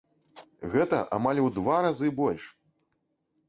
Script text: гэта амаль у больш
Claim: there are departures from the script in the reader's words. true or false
true